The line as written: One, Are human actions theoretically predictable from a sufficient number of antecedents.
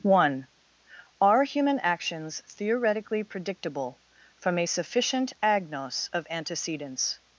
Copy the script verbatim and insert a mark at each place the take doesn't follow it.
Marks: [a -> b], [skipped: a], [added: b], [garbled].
One, Are human actions theoretically predictable from a sufficient [number -> agnos] of antecedents.